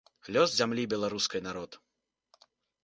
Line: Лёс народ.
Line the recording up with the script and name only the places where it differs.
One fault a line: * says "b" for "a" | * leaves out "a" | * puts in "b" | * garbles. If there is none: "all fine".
* puts in "зямлі беларускай"